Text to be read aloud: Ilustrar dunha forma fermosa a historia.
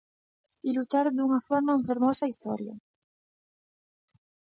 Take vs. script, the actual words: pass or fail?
pass